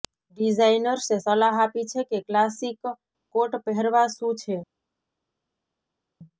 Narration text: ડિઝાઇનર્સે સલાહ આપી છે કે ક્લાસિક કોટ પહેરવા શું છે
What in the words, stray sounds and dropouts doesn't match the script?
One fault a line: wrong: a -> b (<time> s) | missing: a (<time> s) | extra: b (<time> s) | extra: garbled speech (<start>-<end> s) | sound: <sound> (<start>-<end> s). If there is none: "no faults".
no faults